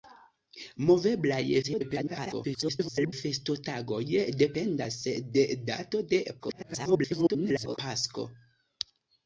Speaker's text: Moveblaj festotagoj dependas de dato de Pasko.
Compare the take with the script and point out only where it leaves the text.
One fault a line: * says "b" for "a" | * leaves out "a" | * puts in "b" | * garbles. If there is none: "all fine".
* garbles
* garbles